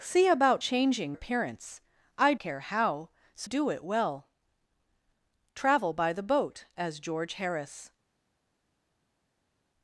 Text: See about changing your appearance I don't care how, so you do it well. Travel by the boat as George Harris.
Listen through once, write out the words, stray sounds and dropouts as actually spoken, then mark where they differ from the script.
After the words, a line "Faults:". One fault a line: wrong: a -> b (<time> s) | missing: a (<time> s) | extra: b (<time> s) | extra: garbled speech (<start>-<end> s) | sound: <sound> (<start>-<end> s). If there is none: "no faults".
See about changing appearance I care how, so do it well. Travel by the boat as George Harris.
Faults:
missing: your (1.2 s)
missing: don't (2.3 s)
missing: you (3.5 s)